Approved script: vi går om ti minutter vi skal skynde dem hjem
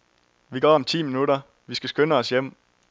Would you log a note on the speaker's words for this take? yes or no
yes